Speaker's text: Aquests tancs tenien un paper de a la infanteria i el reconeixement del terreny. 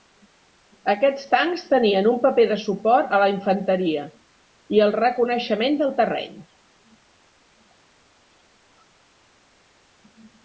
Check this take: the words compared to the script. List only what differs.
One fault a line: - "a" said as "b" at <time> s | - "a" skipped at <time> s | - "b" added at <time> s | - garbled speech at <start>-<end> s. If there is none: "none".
- "suport" added at 2.6 s